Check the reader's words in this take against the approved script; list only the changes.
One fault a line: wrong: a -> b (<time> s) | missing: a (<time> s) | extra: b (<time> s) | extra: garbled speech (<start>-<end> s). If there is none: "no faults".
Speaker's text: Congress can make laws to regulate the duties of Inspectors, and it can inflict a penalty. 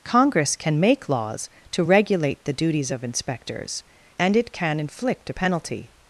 no faults